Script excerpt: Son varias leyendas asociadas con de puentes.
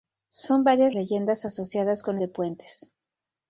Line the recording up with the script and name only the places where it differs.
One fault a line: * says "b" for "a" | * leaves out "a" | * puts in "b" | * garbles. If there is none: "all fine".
all fine